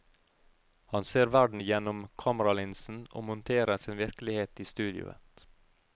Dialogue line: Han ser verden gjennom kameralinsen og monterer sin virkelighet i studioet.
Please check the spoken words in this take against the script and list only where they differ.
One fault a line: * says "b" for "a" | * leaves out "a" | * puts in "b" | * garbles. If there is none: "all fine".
all fine